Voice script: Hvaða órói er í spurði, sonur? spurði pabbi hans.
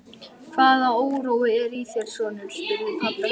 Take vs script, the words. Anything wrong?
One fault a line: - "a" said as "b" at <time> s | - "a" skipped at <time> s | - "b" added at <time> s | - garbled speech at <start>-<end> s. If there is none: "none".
- "spurði" said as "þér" at 1.9 s